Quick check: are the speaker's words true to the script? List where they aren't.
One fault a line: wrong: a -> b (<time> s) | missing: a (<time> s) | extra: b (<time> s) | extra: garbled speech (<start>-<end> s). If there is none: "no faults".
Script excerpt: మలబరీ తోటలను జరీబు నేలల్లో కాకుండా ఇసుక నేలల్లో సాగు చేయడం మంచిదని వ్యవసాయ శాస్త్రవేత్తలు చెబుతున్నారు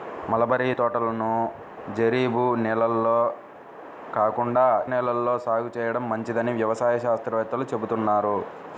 missing: ఇసుక (4.6 s)